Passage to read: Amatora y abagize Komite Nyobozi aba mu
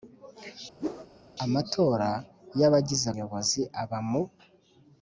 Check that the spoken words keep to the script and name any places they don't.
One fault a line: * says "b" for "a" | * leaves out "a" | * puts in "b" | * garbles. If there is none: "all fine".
* leaves out "Komite"